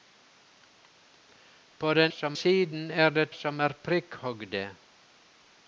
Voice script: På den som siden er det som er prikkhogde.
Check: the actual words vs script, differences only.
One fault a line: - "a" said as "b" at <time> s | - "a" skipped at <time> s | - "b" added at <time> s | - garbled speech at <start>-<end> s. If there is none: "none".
none